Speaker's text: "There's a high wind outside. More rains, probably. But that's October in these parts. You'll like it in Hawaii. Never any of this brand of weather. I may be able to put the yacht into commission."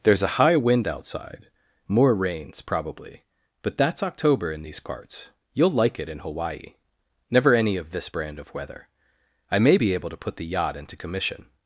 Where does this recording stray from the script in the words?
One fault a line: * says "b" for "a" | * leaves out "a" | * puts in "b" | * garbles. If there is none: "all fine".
all fine